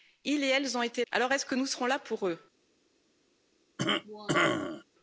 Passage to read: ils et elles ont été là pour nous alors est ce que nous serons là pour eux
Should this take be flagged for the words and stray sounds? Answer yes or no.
yes